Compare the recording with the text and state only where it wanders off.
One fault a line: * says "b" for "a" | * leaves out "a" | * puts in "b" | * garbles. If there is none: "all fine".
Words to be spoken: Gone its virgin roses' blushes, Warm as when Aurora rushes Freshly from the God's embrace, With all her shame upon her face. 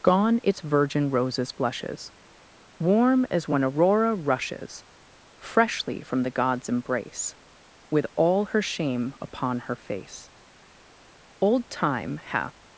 * puts in "Old Time hath"